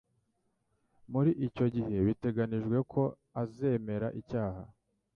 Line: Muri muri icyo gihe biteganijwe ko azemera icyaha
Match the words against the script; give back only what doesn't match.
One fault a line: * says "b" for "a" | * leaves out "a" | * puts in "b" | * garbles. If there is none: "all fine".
* leaves out "muri"